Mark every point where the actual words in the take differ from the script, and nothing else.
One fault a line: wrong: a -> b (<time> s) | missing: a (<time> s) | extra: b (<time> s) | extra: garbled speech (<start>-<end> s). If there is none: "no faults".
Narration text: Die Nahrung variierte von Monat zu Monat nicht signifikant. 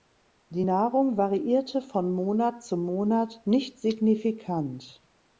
no faults